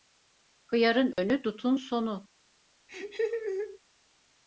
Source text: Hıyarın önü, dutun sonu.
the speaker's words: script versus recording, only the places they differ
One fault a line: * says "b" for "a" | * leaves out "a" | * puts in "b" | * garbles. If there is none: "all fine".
all fine